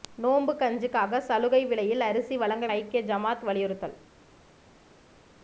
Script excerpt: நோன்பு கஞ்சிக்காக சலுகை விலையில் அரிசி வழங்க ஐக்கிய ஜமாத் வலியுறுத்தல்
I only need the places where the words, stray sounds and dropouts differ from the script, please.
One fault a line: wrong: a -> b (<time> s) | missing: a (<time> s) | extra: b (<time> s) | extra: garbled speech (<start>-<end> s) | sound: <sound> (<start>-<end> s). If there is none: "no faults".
no faults